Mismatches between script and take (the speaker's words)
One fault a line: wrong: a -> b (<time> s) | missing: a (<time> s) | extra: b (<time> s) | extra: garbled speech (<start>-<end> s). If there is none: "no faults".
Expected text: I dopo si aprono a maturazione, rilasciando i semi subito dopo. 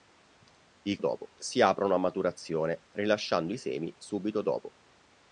no faults